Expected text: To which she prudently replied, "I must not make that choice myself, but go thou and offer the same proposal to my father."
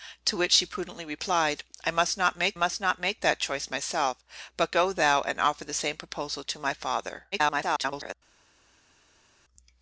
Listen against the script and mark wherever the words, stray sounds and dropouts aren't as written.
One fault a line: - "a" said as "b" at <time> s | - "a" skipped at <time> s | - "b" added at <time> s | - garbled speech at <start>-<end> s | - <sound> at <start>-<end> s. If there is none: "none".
- "must not make" added at 2.5 s
- garbled speech at 7.3-8.1 s